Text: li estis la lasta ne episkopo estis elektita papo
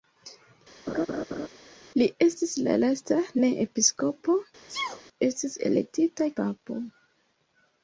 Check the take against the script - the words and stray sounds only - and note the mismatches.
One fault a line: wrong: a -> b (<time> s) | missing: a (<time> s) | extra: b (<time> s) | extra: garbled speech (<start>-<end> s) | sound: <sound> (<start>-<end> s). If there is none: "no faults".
sound: laugh (0.9-1.5 s)
sound: sneeze (4.7-5.0 s)